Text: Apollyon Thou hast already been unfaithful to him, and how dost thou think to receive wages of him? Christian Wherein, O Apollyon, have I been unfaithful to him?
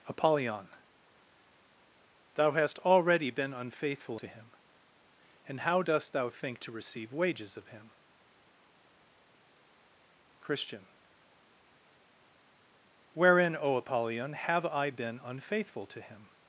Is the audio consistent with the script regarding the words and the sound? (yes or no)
yes